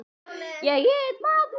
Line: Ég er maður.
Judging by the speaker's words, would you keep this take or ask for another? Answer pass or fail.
pass